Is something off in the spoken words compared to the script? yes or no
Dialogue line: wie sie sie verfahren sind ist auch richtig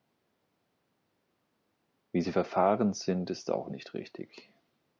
yes